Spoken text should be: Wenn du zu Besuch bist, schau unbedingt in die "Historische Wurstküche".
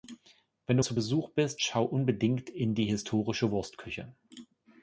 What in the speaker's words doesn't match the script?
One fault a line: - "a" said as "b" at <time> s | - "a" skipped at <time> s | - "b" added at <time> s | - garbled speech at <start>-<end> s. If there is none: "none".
none